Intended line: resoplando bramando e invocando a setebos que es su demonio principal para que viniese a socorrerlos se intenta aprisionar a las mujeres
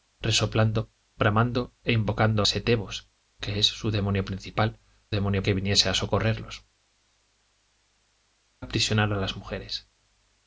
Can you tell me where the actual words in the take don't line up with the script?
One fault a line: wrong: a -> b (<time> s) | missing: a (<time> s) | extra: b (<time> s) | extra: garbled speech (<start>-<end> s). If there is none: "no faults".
missing: a (2.4 s)
wrong: para -> demonio (5.1 s)
missing: se intenta (6.6 s)